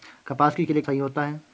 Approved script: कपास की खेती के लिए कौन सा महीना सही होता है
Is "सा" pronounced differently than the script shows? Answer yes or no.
yes